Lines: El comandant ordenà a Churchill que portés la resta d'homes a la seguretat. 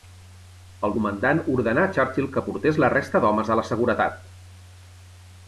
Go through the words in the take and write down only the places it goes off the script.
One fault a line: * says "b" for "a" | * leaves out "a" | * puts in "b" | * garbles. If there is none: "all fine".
all fine